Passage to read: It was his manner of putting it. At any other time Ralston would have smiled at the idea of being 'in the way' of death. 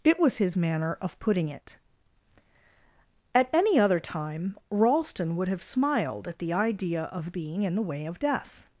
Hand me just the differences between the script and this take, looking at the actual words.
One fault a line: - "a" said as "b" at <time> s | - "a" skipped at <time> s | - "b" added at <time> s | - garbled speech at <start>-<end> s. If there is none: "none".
none